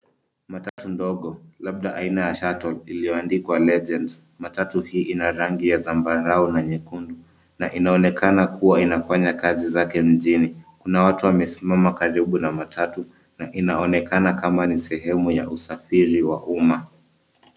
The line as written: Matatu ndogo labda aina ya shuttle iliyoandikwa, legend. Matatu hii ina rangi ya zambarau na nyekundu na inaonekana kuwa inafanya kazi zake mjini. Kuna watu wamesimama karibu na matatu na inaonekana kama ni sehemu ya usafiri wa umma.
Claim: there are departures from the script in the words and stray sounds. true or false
true